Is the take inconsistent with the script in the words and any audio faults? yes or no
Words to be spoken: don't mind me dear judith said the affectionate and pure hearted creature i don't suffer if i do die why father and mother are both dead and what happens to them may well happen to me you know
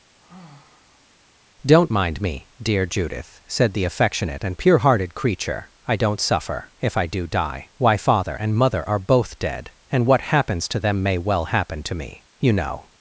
yes